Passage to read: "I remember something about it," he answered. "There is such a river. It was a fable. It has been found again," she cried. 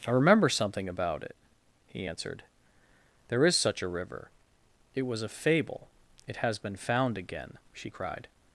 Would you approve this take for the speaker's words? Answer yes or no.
yes